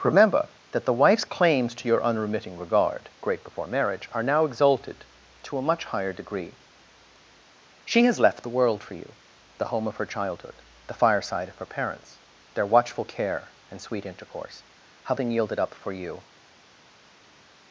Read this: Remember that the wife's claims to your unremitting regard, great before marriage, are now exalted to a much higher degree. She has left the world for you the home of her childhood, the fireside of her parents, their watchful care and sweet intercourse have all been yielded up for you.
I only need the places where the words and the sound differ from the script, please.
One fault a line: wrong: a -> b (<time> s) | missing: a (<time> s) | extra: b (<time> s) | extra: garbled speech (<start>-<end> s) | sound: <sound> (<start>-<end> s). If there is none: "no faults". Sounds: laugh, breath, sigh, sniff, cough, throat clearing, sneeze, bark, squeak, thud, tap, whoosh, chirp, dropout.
missing: all (15.2 s)